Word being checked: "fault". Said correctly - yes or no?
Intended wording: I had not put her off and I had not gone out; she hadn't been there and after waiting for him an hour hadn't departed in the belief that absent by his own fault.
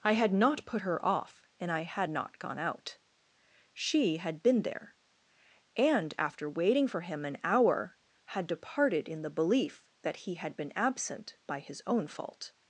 yes